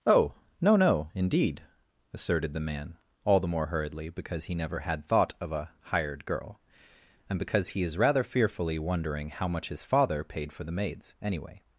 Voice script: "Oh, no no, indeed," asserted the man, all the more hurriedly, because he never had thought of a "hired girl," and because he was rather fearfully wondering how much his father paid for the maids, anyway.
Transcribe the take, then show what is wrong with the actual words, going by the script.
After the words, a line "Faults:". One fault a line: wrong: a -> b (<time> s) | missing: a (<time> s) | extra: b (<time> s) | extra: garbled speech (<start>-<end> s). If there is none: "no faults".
"Oh, no no, indeed," asserted the man, all the more hurriedly, because he never had thought of a "hired girl," and because he is rather fearfully wondering how much his father paid for the maids, anyway.
Faults:
wrong: was -> is (7.8 s)